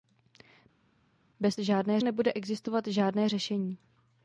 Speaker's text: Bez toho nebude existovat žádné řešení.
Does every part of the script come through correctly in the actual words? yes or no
no